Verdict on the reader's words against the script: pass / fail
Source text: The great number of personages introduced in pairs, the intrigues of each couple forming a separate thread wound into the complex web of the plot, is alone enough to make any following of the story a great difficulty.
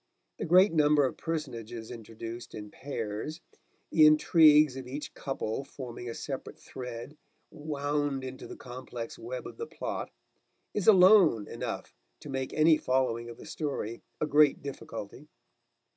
pass